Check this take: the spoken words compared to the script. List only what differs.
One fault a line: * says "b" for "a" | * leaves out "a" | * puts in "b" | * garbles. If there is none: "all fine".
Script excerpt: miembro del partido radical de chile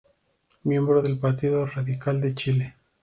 all fine